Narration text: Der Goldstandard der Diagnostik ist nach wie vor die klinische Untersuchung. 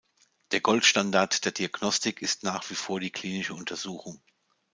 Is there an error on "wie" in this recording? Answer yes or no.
no